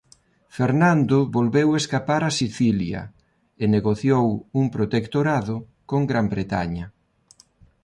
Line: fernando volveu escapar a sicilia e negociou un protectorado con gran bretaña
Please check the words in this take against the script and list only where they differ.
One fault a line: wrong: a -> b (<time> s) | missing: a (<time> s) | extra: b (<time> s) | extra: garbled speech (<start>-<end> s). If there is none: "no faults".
no faults